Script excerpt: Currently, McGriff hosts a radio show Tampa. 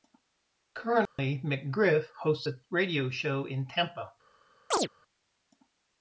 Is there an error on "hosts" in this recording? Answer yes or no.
no